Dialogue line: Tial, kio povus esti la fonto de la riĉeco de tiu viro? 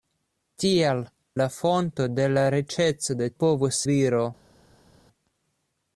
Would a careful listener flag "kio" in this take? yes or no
yes